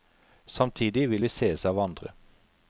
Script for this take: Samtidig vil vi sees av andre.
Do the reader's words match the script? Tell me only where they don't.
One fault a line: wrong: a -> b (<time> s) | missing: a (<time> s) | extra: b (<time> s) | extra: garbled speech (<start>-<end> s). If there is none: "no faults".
no faults